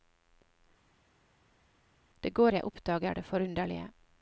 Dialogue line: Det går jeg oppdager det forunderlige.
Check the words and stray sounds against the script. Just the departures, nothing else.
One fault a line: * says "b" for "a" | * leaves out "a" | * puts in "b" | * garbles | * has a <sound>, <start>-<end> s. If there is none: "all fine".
all fine